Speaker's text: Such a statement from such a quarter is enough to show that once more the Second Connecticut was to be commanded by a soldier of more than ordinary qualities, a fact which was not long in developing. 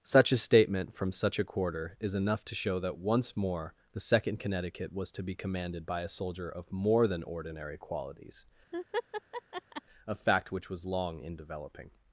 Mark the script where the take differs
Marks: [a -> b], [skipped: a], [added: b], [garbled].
Such a statement from such a quarter is enough to show that once more the Second Connecticut was to be commanded by a soldier of more than ordinary qualities, a fact which was [skipped: not] long in developing.